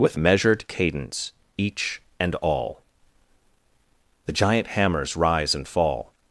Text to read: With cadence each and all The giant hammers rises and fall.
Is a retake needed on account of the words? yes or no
yes